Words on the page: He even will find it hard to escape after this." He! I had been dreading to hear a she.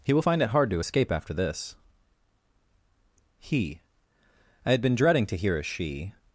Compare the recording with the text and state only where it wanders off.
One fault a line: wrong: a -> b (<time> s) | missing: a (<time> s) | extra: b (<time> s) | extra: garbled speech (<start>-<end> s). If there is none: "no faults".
missing: even (0.1 s)